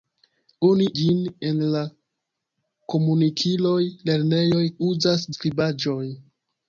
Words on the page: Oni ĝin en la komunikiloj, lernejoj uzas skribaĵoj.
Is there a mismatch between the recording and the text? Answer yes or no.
no